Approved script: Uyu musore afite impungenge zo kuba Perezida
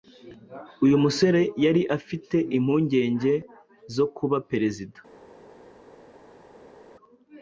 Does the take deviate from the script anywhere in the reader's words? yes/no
yes